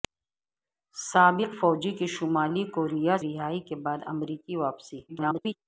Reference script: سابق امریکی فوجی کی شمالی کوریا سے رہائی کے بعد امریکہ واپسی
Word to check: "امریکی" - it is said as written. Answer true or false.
false